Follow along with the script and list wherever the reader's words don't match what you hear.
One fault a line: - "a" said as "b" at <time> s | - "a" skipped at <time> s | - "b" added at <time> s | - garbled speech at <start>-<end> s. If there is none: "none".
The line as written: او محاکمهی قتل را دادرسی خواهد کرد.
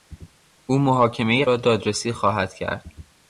- "قتل" skipped at 1.4 s